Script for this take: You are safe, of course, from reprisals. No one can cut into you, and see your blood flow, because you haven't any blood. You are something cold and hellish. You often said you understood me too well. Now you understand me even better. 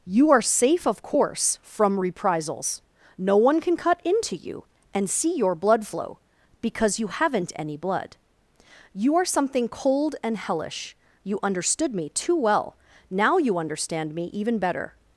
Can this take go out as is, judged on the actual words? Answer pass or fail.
fail